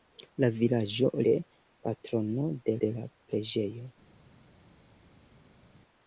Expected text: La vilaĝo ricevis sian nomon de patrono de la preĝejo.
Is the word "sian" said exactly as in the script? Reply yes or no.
no